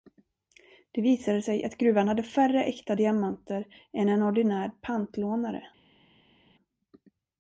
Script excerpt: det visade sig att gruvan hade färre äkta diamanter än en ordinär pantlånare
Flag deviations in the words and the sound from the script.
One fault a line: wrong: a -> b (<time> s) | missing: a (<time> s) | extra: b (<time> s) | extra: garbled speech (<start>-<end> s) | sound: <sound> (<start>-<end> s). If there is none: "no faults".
no faults